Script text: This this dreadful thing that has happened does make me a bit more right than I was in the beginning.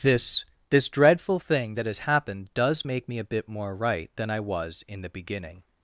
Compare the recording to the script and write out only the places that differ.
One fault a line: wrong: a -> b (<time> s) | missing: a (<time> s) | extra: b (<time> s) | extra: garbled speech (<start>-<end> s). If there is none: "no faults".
no faults